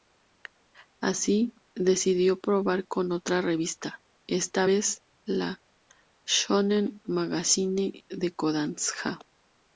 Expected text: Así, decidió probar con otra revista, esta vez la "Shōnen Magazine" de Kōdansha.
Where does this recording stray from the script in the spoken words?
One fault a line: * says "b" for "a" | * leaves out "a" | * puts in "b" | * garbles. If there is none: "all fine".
all fine